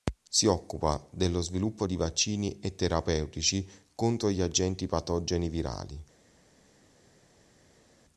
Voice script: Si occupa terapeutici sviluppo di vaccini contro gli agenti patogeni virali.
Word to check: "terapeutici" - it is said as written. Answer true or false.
false